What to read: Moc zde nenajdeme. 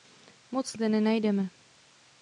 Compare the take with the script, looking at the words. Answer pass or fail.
pass